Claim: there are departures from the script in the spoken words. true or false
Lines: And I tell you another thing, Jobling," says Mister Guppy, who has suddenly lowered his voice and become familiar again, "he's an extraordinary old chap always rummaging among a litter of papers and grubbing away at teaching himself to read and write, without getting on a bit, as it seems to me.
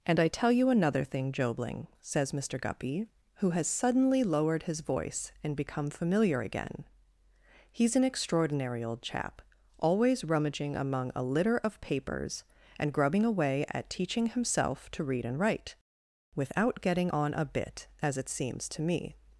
false